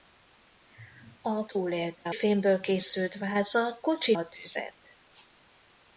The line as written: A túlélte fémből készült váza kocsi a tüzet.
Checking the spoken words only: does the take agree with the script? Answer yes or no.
yes